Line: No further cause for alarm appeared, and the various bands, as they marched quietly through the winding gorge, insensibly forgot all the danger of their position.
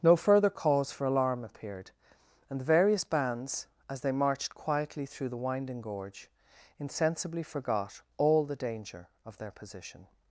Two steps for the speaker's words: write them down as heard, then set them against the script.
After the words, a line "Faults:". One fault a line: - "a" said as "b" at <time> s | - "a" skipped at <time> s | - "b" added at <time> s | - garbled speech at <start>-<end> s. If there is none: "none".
No further cause for alarm appeared, and the various bands, as they marched quietly through the winding gorge, insensibly forgot all the danger of their position.
Faults:
none